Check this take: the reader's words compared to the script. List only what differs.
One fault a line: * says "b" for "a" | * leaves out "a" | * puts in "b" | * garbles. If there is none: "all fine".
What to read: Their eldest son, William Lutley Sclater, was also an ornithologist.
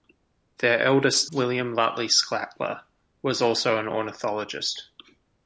* leaves out "son"